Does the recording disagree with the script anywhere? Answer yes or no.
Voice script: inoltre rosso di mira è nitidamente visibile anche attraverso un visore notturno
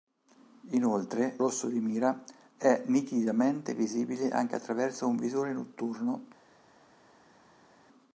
no